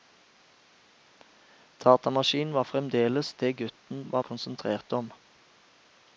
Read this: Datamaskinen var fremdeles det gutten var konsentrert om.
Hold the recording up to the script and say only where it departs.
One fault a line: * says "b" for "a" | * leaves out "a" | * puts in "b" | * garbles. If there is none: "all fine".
all fine